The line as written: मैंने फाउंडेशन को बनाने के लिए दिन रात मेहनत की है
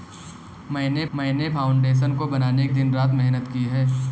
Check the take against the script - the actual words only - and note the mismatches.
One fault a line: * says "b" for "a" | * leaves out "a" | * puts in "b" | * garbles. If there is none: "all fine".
* puts in "मैंने"
* leaves out "के लिए"